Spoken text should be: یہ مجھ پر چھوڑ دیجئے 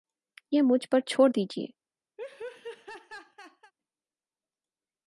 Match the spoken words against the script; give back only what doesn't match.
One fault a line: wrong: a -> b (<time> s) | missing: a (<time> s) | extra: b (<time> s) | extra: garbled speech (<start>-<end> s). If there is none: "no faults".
no faults